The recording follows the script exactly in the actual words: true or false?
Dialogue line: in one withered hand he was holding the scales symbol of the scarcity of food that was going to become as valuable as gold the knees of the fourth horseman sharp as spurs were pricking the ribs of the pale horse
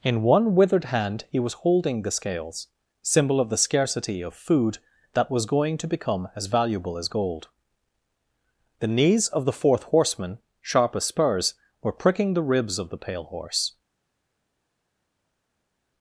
true